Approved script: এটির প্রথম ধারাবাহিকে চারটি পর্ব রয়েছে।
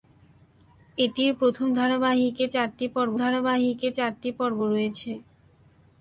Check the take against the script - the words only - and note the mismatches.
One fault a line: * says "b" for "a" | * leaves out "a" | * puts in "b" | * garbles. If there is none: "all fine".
* puts in "ধারাবাহিকে চারটি পর্ব"